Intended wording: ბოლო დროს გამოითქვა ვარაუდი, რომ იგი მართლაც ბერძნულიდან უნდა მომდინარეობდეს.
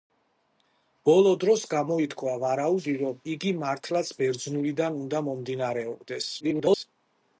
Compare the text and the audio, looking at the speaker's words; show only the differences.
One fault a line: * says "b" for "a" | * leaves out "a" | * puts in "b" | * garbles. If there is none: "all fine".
* garbles